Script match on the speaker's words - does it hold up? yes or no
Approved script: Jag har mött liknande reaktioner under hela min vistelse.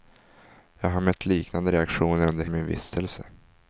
no